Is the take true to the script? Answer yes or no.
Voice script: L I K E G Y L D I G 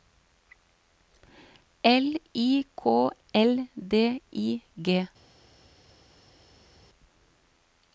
no